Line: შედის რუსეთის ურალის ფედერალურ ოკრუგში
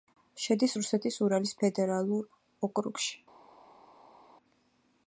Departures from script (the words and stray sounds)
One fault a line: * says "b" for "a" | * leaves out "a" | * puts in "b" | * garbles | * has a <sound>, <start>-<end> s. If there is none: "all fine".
all fine